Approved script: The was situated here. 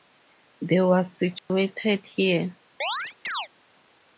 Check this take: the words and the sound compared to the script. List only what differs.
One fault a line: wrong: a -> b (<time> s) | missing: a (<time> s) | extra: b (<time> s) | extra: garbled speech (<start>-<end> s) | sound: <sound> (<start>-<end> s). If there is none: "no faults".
sound: dropout (1.4-1.5 s)
sound: chirp (2.8-3.5 s)